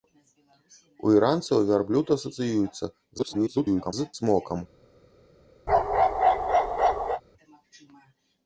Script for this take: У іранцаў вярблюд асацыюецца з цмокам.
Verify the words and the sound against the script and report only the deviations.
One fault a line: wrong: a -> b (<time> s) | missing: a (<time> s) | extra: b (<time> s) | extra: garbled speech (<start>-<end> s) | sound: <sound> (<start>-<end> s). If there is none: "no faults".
extra: garbled speech (3.2-3.9 s)
sound: bark (5.7-7.2 s)